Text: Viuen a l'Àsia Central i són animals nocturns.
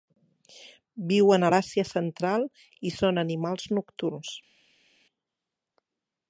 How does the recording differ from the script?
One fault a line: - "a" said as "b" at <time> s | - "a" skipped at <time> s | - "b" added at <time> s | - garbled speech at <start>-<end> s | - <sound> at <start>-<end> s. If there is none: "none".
none